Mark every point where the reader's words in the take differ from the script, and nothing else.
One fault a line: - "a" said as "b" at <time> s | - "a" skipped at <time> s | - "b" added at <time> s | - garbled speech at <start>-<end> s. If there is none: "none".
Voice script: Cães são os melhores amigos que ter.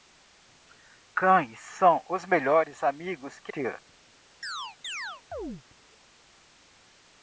none